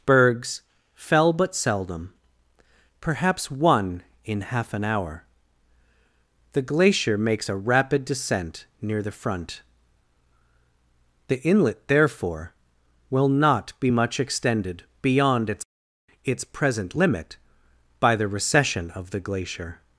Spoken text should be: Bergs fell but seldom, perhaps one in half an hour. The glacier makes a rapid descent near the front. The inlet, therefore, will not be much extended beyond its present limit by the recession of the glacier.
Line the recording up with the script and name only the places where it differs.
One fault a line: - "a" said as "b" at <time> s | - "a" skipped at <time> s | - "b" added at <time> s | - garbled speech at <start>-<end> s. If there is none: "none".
- "its" added at 16.2 s